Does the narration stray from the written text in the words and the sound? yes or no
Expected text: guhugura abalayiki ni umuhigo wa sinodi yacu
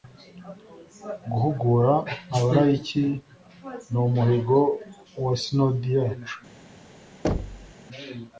yes